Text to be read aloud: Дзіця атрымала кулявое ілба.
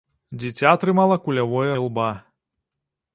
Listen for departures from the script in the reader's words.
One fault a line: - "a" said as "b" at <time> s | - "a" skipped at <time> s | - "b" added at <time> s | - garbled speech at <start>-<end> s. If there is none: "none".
none